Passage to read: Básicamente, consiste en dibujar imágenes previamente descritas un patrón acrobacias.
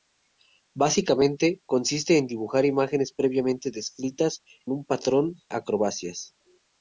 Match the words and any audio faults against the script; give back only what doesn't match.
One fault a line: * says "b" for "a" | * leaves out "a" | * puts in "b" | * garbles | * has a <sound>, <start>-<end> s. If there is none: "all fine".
all fine